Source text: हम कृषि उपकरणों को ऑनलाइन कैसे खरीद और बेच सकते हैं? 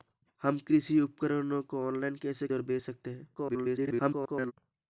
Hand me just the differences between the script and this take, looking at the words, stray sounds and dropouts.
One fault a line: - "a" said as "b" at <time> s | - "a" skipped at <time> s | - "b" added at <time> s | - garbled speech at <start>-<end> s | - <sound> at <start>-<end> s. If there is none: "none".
- "खरीद" skipped at 2.5 s
- garbled speech at 3.3-4.5 s